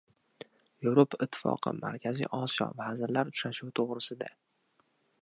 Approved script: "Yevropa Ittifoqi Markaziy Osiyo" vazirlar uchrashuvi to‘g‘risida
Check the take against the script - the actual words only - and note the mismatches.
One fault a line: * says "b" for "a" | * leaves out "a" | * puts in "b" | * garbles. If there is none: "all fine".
all fine